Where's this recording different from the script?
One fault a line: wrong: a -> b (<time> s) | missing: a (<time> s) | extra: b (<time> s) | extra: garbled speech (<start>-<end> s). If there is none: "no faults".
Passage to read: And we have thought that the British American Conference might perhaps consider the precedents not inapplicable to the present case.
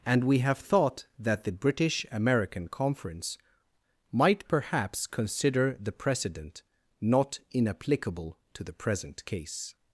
wrong: precedents -> precedent (5.9 s)